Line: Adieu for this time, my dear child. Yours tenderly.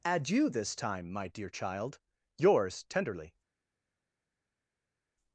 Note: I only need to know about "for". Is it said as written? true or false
false